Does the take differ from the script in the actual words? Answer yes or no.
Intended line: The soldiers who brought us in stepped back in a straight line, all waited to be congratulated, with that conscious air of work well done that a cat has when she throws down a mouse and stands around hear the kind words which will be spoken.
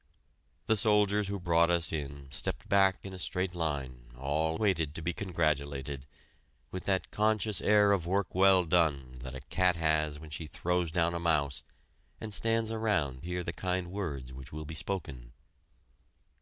no